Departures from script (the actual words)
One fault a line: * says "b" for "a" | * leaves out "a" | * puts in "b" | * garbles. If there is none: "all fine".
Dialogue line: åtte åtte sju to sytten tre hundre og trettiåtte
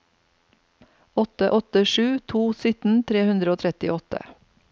all fine